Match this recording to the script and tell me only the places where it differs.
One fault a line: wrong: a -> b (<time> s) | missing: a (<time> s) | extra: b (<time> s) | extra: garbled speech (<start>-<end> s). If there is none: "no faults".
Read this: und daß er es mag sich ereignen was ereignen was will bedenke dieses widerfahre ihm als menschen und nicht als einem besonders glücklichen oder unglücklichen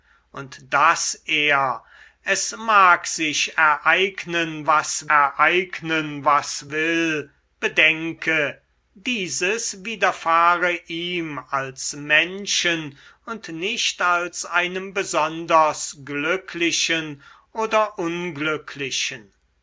no faults